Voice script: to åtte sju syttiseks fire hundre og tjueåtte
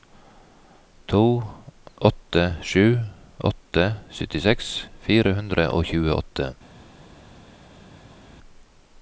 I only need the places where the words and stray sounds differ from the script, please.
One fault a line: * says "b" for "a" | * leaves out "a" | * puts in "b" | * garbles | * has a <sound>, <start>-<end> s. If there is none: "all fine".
* puts in "åtte"